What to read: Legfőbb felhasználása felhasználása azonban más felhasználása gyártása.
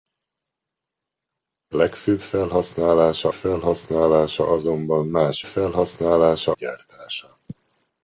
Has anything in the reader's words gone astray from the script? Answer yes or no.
no